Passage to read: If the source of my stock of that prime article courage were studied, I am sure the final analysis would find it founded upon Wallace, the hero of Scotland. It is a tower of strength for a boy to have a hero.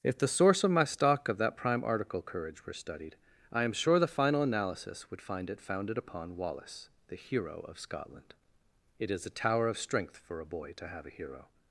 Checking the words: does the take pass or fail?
pass